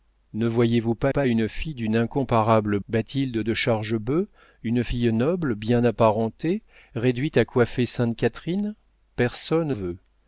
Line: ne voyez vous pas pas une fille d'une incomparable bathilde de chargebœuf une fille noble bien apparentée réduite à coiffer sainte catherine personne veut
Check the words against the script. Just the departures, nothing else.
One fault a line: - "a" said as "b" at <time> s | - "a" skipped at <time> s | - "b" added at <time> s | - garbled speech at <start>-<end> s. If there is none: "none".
none